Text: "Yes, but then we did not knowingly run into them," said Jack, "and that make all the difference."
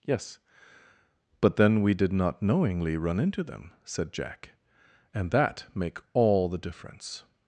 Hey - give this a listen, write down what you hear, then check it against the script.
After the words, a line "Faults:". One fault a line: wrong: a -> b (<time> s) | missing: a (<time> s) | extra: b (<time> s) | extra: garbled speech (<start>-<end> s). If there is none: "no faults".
"Yes, but then we did not knowingly run into them," said Jack, "and that make all the difference."
Faults:
no faults